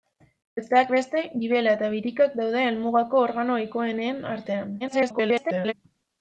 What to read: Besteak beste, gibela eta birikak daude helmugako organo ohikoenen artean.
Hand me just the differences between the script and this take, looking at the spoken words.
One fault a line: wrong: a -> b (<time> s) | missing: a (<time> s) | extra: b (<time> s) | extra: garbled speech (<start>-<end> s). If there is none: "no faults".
extra: garbled speech (4.8-5.7 s)